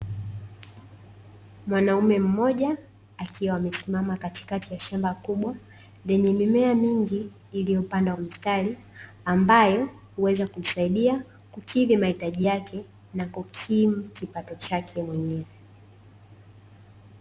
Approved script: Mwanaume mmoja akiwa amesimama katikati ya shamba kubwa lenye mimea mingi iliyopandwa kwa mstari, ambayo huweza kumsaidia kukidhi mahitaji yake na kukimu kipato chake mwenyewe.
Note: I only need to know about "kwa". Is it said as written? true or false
false